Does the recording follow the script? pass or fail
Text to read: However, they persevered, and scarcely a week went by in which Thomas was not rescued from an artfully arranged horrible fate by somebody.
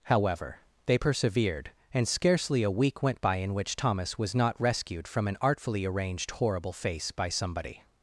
fail